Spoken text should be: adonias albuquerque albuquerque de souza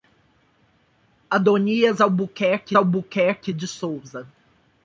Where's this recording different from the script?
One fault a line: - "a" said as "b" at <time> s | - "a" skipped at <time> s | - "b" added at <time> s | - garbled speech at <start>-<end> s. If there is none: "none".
none